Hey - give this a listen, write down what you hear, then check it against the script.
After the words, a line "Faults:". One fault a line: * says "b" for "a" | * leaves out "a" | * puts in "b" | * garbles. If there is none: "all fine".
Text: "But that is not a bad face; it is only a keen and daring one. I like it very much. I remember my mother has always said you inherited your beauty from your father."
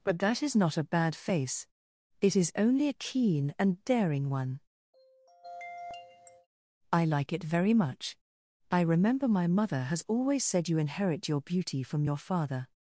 "But that is not a bad face; it is only a keen and daring one. I like it very much. I remember my mother has always said you inherit your beauty from your father."
Faults:
* says "inherit" for "inherited"